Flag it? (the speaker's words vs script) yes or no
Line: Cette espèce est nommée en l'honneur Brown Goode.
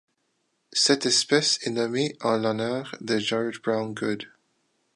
yes